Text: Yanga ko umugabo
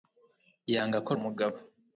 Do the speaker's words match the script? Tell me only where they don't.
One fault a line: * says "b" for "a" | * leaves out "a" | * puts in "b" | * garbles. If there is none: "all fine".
all fine